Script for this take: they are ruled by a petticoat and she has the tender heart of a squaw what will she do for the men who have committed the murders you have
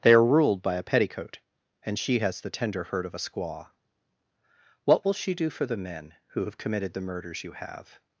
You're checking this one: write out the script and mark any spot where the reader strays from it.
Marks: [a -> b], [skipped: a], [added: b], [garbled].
they are ruled by a petticoat and she has the tender [heart -> hurt] of a squaw what will she do for the men who have committed the murders you have